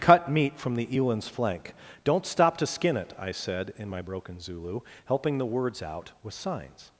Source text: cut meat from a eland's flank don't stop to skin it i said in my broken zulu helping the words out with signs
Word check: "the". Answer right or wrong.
right